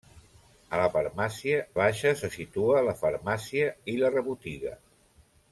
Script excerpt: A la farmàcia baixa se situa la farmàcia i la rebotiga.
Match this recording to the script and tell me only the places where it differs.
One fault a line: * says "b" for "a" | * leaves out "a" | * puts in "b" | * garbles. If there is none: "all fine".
all fine